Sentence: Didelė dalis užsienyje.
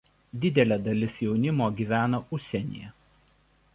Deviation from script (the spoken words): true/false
true